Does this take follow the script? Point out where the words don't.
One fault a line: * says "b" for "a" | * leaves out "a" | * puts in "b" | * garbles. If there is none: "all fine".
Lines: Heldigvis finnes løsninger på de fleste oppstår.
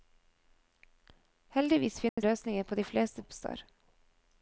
all fine